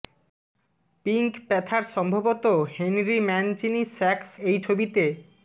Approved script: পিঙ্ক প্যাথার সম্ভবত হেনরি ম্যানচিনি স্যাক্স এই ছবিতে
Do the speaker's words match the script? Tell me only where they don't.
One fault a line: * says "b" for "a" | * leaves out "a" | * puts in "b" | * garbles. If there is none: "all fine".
all fine